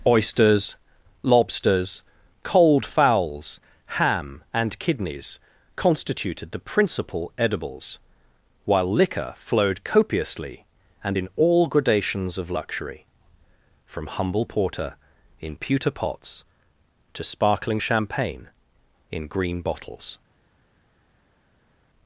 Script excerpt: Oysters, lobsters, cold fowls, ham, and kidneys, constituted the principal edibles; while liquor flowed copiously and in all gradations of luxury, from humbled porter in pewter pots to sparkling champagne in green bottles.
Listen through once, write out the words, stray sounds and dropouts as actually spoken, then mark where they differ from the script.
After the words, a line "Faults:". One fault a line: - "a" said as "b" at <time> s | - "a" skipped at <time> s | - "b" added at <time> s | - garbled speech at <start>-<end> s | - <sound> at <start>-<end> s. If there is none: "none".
Oysters, lobsters, cold fowls, ham, and kidneys, constituted the principal edibles; while liquor flowed copiously and in all gradations of luxury, from humble porter in pewter pots to sparkling champagne in green bottles.
Faults:
- "humbled" said as "humble" at 14.0 s